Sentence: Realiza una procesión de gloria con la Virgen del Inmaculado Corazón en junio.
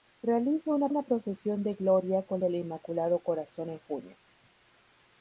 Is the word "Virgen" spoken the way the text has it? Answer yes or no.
no